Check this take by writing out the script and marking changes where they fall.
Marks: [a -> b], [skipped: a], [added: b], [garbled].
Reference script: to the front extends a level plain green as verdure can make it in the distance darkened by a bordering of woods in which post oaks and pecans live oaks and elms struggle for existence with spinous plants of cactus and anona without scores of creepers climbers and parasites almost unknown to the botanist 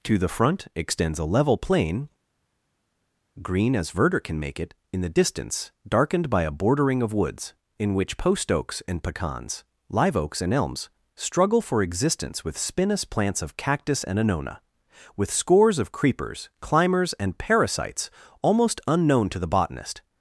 to the front extends a level plain green as verdure can make it in the distance darkened by a bordering of woods in which post oaks and pecans live oaks and elms struggle for existence with spinous plants of cactus and anona [without -> with] scores of creepers climbers and parasites almost unknown to the botanist